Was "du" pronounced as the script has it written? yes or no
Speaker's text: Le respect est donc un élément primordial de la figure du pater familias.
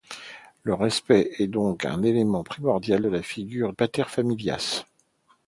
no